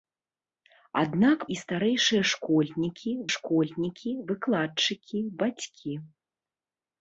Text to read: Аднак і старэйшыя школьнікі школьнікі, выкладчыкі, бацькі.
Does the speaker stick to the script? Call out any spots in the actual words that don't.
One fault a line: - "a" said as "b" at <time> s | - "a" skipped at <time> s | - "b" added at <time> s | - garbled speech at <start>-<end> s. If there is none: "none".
none